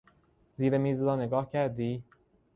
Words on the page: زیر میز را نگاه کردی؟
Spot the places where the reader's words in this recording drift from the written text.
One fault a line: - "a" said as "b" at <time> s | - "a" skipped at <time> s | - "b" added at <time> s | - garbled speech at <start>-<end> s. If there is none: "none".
none